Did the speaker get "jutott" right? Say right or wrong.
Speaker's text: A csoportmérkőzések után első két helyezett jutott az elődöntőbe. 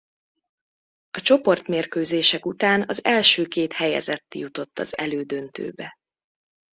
right